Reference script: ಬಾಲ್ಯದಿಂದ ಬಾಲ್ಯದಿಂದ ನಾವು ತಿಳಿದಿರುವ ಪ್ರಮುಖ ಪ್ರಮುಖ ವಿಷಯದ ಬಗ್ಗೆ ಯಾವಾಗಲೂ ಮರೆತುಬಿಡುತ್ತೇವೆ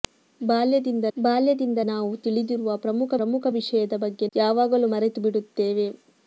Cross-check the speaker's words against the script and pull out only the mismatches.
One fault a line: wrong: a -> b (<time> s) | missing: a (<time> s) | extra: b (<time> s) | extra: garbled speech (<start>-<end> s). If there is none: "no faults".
no faults